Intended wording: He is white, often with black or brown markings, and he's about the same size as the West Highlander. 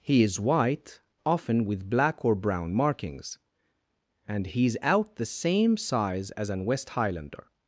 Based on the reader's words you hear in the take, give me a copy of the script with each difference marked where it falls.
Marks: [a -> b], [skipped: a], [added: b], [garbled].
He is white, often with black or brown markings, and he's [about -> out] the same size as [the -> an] West Highlander.